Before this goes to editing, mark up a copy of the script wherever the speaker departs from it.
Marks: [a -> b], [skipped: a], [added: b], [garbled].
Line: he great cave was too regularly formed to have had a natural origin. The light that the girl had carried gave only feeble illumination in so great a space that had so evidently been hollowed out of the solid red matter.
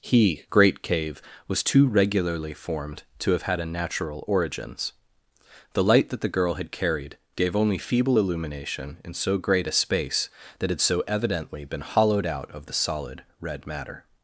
he great cave was too regularly formed to have had a natural [origin. -> origins] The light that the girl had carried gave only feeble illumination in so great a space that had so evidently been hollowed out of the solid red matter.